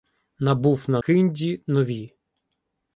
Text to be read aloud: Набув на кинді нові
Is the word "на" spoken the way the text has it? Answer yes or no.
yes